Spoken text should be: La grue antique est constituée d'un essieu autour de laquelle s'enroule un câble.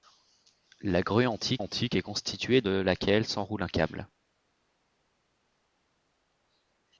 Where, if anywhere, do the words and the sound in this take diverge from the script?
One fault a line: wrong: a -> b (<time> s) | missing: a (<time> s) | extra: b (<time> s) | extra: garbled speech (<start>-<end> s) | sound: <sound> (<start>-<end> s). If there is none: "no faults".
extra: antique (1.6 s)
missing: d'un essieu autour (2.6 s)